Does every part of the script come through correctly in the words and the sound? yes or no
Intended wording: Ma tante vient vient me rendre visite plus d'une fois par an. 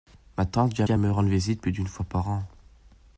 yes